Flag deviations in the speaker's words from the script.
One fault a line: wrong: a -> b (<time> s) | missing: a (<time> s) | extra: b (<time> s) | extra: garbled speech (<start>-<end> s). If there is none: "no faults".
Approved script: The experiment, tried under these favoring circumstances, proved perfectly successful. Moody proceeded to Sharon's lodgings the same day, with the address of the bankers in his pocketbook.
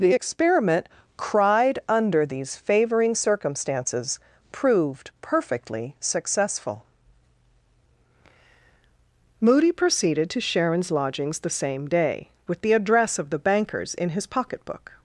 wrong: tried -> cried (1.2 s)